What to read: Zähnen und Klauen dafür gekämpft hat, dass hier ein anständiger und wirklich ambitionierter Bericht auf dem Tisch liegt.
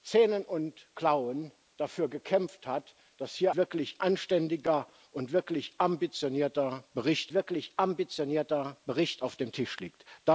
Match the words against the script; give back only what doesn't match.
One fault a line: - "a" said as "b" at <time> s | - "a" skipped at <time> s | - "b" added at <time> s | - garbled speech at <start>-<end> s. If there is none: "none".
- "ein" said as "wirklich" at 3.5 s
- "wirklich ambitionierter Bericht" added at 7.3 s